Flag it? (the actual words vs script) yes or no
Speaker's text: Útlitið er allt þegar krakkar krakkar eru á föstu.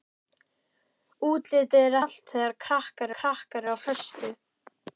no